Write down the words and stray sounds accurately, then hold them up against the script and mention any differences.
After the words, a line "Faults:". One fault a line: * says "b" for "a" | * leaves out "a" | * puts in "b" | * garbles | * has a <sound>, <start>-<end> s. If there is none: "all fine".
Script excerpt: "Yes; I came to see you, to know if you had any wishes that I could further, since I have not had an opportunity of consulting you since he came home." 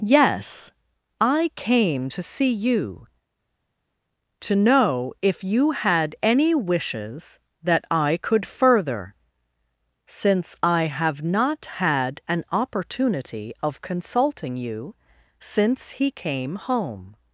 "Yes; I came to see you, to know if you had any wishes that I could further, since I have not had an opportunity of consulting you since he came home."
Faults:
all fine